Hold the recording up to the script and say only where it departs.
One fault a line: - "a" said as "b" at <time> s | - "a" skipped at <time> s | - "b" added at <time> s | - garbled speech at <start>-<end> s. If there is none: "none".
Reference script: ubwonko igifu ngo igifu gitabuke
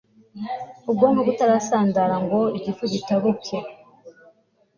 - "igifu" said as "butarasandara" at 1.3 s